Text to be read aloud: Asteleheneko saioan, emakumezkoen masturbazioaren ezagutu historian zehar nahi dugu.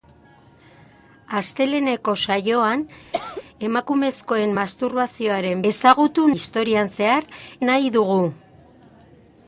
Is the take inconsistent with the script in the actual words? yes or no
no